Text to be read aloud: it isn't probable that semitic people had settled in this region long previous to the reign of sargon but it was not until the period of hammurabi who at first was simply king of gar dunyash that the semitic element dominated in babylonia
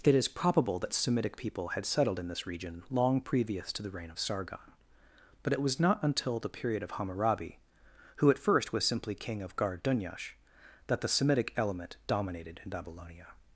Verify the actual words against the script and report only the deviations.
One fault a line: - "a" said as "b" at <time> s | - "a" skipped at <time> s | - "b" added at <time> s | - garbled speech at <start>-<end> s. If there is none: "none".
- "isn't" said as "is" at 0.1 s